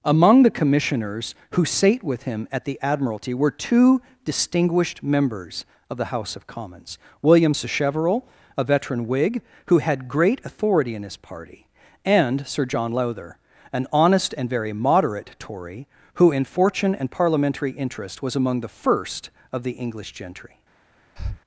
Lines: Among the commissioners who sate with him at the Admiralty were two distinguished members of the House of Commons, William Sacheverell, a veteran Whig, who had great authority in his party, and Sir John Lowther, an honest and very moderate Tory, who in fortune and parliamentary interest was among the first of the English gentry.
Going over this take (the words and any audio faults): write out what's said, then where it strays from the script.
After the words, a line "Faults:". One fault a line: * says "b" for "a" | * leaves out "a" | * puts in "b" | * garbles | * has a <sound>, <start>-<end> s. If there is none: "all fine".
Among the commissioners who sate with him at the Admiralty were two distinguished members of the House of Commons, William Sacheverell, a veteran Whig, who had great authority in his party, and Sir John Lowther, an honest and very moderate Tory, who in fortune and parliamentary interest was among the first of the English gentry.
Faults:
* has a breath, 21.2-21.4 s